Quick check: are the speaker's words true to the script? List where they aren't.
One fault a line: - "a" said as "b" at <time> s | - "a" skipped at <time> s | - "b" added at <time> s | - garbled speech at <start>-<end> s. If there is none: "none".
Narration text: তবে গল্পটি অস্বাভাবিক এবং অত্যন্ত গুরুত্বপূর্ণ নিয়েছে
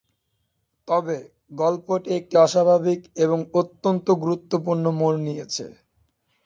- "একটি" added at 2.2 s
- "মোড়" added at 5.0 s